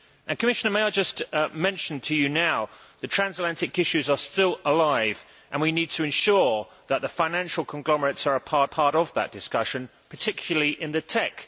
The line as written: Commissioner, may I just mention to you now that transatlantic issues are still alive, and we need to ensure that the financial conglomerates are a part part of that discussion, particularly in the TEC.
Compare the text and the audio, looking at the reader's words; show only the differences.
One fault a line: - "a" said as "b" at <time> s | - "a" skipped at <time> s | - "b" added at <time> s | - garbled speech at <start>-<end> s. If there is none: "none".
none